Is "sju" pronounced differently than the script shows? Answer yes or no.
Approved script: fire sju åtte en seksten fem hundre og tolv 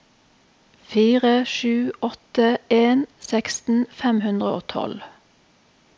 no